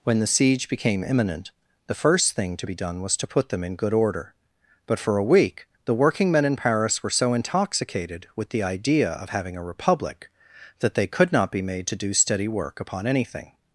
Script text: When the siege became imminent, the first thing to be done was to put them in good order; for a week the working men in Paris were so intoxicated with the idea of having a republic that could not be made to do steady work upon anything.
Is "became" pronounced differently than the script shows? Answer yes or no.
no